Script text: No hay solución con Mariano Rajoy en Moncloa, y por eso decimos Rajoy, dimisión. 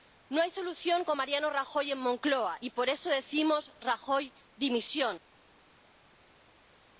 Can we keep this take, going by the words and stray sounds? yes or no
yes